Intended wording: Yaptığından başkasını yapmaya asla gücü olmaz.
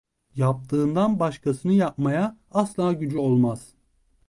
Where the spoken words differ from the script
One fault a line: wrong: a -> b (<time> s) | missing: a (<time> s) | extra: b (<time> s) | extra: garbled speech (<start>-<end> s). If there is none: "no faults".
no faults